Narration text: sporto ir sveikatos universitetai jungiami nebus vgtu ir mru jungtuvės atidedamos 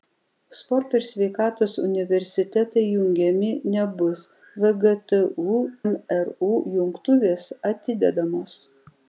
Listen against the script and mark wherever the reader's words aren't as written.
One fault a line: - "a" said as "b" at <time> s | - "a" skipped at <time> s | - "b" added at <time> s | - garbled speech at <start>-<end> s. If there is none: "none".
- "ir" skipped at 5.2 s